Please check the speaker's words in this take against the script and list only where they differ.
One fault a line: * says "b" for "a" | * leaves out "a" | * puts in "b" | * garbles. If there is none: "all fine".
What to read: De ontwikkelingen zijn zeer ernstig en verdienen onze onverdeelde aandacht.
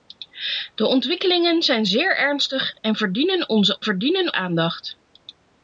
* says "verdienen" for "onverdeelde"